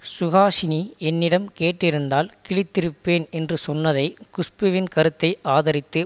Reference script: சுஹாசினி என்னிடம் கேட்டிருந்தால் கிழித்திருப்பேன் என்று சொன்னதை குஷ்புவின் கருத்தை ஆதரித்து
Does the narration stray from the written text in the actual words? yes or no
no